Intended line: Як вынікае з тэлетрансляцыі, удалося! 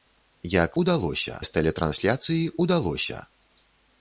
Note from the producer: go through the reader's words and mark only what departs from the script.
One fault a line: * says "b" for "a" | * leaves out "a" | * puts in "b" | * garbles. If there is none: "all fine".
* says "удалося" for "вынікае"